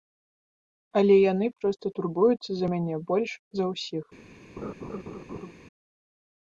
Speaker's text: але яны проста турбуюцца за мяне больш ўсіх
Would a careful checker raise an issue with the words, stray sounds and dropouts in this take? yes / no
yes